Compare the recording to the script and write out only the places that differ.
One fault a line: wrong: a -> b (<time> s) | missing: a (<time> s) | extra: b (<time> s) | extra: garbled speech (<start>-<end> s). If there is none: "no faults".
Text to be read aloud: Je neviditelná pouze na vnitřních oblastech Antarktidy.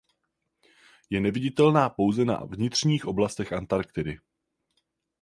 no faults